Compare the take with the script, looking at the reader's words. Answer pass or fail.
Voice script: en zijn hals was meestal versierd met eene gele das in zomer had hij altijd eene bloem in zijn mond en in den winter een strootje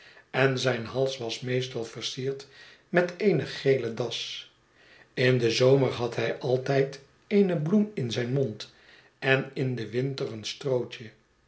fail